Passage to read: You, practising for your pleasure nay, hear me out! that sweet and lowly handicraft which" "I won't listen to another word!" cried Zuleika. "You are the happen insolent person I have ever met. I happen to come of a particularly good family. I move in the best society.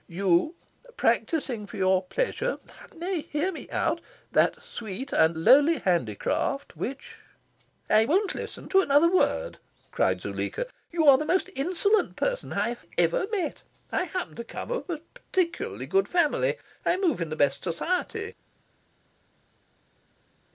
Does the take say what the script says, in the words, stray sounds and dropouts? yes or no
no